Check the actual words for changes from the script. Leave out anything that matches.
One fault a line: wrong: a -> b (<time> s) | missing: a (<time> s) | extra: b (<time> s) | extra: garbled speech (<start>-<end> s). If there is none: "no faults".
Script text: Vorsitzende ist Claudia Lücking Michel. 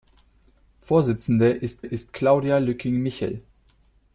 extra: ist (1.8 s)